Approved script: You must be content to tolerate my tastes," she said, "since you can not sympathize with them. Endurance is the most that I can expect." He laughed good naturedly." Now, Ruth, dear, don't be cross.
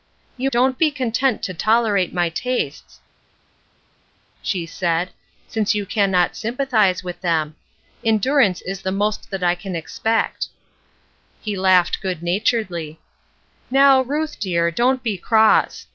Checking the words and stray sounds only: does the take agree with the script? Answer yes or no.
no